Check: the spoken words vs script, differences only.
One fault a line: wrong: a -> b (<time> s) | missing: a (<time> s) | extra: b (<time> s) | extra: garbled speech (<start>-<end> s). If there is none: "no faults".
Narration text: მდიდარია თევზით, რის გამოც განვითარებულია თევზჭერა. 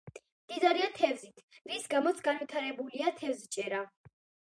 no faults